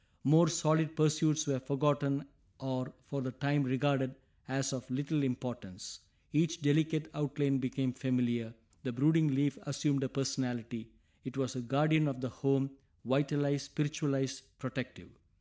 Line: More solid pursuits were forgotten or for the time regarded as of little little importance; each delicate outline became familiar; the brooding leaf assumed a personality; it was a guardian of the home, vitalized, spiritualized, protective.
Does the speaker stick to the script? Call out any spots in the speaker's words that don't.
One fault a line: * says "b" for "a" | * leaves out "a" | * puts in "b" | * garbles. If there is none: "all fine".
* leaves out "little"